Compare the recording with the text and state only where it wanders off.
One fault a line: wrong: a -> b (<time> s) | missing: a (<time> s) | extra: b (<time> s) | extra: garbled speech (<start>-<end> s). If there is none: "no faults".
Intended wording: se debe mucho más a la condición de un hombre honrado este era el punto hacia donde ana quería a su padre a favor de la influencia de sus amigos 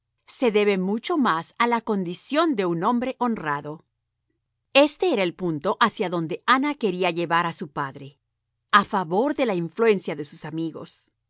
extra: llevar (7.1 s)